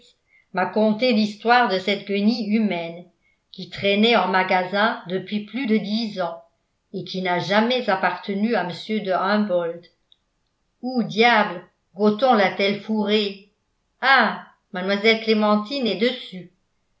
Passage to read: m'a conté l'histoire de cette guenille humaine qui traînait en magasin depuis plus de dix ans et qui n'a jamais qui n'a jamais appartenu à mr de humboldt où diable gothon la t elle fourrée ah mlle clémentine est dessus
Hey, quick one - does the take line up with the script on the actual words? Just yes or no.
no